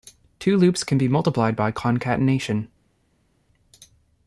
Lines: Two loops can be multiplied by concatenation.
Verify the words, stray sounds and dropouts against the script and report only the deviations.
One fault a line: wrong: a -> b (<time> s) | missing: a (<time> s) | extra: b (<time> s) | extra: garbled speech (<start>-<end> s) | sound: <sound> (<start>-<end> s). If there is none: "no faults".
no faults